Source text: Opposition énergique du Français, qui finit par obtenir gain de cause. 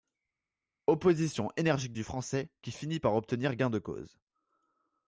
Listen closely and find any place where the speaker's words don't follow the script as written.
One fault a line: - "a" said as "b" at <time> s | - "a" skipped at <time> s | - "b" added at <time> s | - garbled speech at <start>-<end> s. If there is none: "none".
none